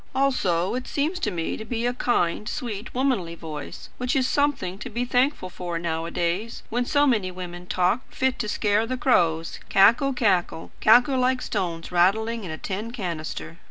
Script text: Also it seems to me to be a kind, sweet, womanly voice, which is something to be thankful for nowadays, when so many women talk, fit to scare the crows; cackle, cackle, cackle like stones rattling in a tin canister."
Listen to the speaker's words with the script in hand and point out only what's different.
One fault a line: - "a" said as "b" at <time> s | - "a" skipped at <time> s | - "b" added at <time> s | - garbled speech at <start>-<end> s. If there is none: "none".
none